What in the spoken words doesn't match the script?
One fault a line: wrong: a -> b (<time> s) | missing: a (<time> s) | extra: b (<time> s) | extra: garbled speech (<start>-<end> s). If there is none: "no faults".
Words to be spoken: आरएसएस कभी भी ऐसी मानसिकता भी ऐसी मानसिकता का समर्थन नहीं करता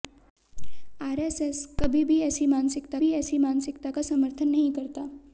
no faults